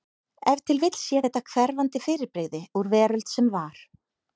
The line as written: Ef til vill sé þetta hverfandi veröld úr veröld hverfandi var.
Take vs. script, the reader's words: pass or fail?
fail